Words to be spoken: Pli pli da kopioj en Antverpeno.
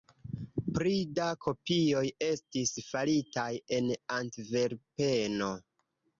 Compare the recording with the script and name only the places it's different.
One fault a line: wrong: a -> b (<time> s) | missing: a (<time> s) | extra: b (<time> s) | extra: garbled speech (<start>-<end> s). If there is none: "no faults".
missing: pli (0.9 s)
extra: estis faritaj (2.3 s)